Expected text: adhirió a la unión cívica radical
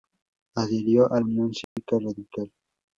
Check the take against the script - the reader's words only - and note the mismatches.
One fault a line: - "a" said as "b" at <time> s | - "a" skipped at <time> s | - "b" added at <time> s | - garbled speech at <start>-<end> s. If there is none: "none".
- "la" skipped at 1.2 s